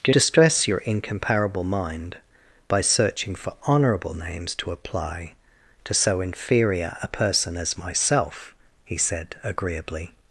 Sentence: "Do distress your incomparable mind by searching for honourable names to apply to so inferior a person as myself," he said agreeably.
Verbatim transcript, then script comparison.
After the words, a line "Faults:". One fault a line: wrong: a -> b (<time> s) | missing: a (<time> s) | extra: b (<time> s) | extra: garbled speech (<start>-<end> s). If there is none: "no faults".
"Do distress your incomparable mind by searching for honourable names to apply to so inferior a person as myself," he said agreeably.
Faults:
no faults